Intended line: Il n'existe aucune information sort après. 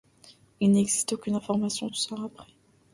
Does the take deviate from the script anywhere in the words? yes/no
no